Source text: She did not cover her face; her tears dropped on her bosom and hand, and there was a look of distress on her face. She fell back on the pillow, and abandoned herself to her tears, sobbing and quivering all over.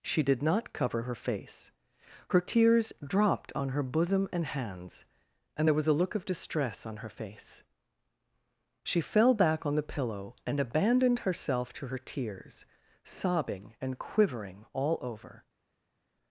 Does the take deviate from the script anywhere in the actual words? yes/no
yes